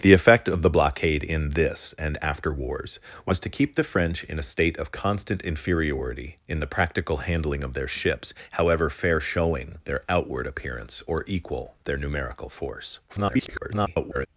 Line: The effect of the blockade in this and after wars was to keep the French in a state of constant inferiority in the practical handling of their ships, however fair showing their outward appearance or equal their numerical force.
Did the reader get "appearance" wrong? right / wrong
right